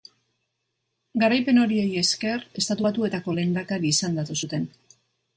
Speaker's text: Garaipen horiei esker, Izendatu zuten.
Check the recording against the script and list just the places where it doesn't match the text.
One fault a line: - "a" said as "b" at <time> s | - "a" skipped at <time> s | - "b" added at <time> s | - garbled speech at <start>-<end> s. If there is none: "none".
- "Estatu Batuetako lehendakari" added at 2.6 s